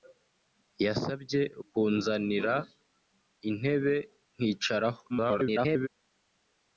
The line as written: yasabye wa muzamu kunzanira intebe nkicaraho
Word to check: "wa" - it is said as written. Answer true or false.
false